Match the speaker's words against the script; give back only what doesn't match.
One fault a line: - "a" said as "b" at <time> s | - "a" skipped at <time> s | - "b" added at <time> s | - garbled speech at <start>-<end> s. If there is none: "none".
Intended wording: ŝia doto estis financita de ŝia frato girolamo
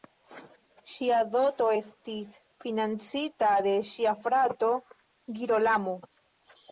none